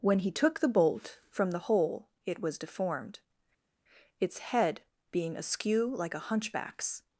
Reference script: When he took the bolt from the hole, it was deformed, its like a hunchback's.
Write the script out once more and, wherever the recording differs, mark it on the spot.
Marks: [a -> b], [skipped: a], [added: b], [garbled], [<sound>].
When he took the bolt from the hole, it was deformed, its [added: head being askew] like a hunchback's.